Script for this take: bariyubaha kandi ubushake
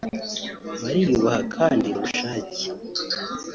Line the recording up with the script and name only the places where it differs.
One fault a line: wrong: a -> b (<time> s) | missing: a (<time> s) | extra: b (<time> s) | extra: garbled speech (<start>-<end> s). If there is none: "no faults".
no faults